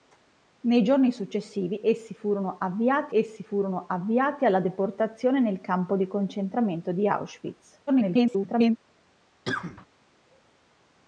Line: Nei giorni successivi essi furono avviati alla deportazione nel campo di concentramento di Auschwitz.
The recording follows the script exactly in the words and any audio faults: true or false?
false